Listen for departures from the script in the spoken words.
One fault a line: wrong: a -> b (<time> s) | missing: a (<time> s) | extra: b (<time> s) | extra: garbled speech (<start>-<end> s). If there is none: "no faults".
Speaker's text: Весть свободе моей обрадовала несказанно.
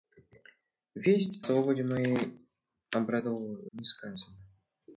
no faults